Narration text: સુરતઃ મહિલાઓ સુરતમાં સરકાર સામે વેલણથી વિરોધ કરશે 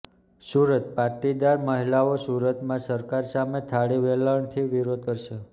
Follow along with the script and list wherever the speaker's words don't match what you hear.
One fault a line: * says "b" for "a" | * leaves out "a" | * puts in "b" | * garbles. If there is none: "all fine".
* puts in "પાટીદાર"
* puts in "થાળી"